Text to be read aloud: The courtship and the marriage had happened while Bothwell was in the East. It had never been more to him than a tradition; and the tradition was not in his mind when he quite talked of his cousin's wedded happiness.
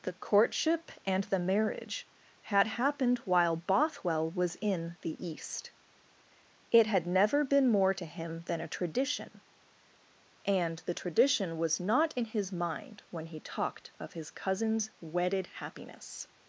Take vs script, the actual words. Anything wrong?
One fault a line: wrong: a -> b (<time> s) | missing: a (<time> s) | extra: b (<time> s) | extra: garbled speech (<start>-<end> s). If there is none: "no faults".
missing: quite (13.4 s)